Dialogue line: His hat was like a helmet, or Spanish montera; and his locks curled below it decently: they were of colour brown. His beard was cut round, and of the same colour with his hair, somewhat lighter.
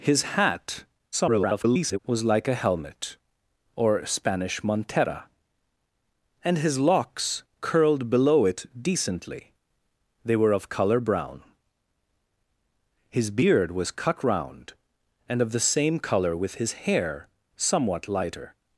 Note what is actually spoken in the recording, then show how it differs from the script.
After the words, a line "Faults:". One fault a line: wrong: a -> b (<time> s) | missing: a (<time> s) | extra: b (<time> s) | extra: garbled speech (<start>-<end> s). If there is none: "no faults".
His hat [garbled] was like a helmet, or Spanish montera; and his locks curled below it decently: they were of colour brown. His beard was cut round, and of the same colour with his hair, somewhat lighter.
Faults:
extra: garbled speech (1.1-2.0 s)